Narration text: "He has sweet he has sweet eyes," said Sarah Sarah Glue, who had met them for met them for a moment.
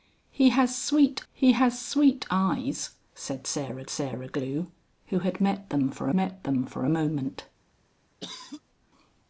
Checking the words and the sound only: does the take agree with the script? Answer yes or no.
no